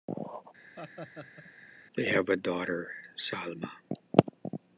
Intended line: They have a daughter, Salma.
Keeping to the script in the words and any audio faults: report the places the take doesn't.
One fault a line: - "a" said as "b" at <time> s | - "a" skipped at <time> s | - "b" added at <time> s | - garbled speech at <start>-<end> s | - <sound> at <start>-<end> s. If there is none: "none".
- laugh at 0.8-1.5 s